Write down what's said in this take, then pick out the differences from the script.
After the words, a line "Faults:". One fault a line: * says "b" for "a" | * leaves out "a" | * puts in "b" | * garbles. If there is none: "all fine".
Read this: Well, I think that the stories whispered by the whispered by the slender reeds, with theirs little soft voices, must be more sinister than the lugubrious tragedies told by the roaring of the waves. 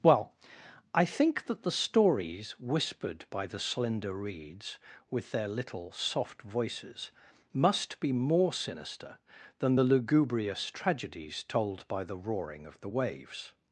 Well, I think that the stories whispered by the slender reeds, with their little soft voices, must be more sinister than the lugubrious tragedies told by the roaring of the waves.
Faults:
* leaves out "whispered by the"
* says "their" for "theirs"